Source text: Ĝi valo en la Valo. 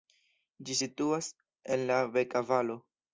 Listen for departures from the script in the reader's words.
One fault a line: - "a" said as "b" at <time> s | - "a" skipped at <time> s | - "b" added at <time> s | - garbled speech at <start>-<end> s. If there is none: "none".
- "valo" said as "situas" at 0.8 s
- "Beka" added at 2.1 s